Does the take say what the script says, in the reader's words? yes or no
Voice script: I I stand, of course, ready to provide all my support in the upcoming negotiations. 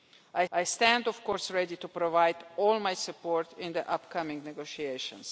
yes